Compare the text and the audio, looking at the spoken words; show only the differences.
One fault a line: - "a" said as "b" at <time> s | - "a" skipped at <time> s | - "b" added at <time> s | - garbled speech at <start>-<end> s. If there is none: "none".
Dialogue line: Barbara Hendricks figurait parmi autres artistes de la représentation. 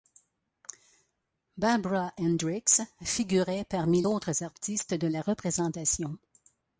none